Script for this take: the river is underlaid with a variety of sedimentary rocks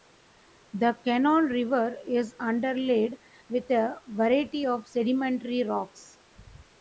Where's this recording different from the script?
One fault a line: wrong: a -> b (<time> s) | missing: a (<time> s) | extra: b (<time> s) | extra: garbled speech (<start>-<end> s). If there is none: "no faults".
extra: cannon (1.1 s)